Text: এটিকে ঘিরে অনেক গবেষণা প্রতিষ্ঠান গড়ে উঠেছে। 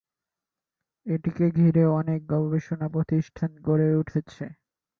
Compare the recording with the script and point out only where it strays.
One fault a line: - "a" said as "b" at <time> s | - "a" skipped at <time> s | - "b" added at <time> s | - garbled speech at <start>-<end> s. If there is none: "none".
none